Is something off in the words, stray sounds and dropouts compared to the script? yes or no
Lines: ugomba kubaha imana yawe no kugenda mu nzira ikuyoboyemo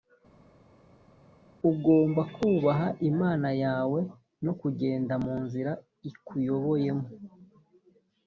no